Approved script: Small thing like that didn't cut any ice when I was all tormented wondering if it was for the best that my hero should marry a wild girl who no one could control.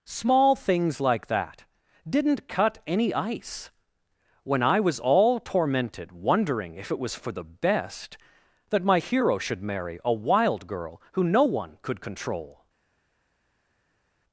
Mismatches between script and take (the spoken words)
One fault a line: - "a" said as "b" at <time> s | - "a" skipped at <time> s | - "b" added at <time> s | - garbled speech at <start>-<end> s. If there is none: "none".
- "thing" said as "things" at 0.6 s